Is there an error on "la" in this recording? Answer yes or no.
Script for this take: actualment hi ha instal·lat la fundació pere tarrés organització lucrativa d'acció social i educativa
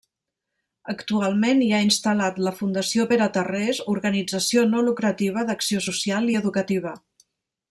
no